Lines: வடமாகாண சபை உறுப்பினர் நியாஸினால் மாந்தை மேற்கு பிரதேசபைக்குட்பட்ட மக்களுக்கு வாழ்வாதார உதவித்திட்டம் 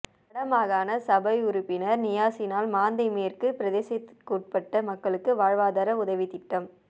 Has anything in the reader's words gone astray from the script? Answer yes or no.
no